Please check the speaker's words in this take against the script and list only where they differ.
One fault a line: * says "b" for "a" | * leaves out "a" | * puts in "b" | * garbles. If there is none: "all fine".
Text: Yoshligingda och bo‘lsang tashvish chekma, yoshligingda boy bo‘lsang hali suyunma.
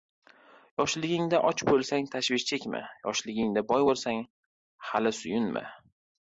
all fine